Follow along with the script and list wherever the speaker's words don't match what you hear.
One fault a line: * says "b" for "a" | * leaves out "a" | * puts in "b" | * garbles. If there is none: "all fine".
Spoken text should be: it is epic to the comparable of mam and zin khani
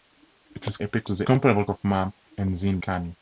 all fine